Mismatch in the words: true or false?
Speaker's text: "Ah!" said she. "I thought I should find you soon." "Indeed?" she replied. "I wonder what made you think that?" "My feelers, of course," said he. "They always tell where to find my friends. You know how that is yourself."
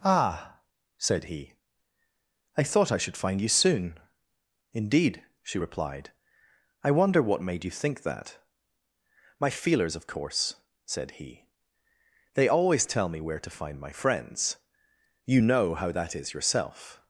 true